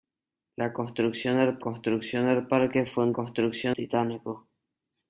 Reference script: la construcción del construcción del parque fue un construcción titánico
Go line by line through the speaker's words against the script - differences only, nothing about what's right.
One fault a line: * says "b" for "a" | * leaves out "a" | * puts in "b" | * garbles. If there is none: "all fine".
all fine